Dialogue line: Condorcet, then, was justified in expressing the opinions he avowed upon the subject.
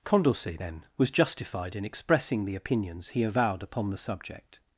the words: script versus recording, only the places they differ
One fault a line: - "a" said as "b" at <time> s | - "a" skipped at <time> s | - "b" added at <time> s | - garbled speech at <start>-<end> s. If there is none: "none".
none